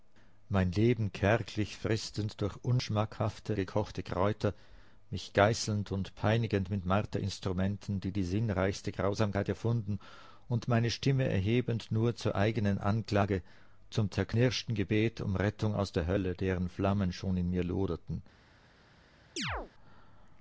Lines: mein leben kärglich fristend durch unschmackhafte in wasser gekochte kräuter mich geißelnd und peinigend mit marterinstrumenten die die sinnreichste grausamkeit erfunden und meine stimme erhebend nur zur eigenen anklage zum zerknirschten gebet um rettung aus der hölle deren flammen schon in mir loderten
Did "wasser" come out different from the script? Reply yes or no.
yes